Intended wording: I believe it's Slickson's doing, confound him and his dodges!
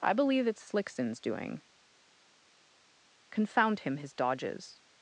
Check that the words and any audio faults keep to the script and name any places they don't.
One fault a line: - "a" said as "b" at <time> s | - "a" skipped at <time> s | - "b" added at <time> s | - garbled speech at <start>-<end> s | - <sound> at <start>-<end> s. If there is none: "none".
- "and" skipped at 4.0 s